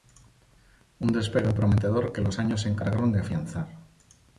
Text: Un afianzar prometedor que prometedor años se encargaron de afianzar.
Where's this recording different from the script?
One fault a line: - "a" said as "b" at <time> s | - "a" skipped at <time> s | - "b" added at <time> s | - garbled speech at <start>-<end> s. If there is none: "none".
- "afianzar" said as "despegue" at 1.1 s
- "prometedor" said as "los" at 2.2 s